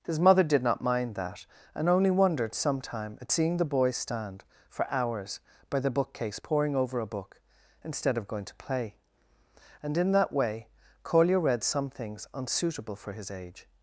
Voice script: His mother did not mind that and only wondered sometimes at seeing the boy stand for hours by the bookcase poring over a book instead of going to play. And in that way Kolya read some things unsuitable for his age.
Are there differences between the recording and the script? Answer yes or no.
yes